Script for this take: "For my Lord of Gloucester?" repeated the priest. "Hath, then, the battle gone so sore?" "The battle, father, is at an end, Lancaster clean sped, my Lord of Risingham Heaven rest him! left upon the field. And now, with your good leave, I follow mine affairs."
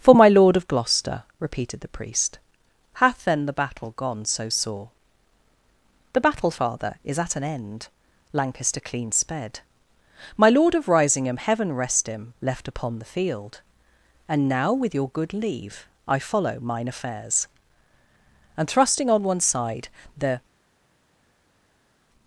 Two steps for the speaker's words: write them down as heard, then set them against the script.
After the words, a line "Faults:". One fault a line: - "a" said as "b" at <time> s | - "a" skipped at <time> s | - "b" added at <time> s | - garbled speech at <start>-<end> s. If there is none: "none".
"For my Lord of Gloucester?" repeated the priest. "Hath, then, the battle gone so sore?" "The battle, father, is at an end, Lancaster clean sped, my Lord of Risingham Heaven rest him! left upon the field. And now, with your good leave, I follow mine affairs." And thrusting on one side the
Faults:
- "And thrusting on one side the" added at 18.6 s